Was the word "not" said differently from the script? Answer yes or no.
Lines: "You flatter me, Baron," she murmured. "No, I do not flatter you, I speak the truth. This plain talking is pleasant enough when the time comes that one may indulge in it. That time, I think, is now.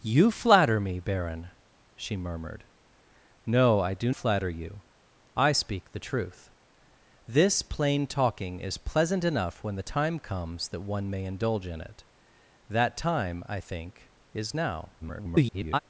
yes